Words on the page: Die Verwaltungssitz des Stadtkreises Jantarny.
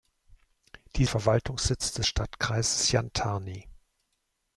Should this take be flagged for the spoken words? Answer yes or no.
no